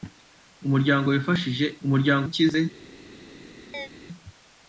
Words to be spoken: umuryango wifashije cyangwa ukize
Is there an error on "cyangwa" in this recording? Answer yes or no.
yes